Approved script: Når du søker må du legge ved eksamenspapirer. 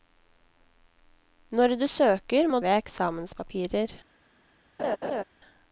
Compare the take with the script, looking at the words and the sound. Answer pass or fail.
fail